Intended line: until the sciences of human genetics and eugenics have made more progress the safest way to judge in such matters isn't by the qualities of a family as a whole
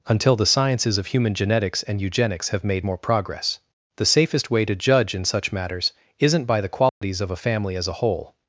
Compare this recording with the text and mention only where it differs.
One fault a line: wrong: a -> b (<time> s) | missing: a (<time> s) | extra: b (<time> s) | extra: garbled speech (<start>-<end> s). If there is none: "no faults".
no faults